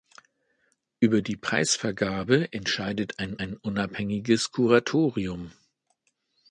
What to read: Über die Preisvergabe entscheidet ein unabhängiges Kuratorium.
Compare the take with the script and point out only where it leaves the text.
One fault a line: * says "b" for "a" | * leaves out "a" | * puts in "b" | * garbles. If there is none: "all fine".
* puts in "ein"